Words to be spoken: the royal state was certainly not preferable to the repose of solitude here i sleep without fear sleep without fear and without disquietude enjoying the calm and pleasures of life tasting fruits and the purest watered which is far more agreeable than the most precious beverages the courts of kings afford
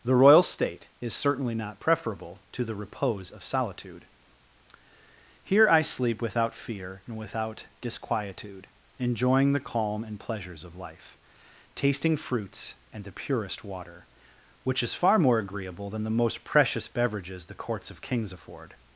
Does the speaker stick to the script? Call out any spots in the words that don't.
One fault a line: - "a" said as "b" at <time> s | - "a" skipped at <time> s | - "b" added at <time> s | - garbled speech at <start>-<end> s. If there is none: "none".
- "was" said as "is" at 1.0 s
- "sleep without fear" skipped at 7.0 s
- "watered" said as "water" at 13.6 s